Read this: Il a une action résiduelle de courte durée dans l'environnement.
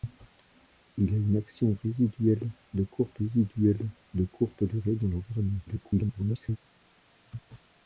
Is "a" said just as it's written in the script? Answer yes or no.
yes